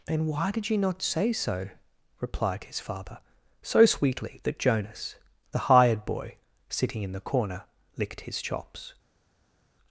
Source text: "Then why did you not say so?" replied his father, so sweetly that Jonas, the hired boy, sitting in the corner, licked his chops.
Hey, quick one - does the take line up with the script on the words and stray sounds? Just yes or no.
no